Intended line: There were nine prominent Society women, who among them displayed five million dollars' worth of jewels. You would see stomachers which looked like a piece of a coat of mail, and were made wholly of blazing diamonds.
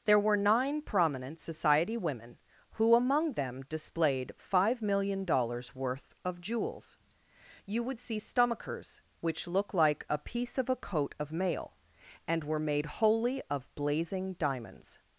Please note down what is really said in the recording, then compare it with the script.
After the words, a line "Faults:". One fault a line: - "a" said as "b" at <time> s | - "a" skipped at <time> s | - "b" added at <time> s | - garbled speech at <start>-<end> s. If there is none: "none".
There were nine prominent Society women, who among them displayed five million dollars' worth of jewels. You would see stomachers which look like a piece of a coat of mail, and were made wholly of blazing diamonds.
Faults:
- "looked" said as "look" at 9.5 s